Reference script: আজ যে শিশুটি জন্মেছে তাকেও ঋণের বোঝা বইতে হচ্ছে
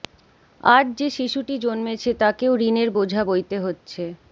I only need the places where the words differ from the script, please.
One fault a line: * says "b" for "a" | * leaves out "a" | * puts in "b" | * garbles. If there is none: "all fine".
all fine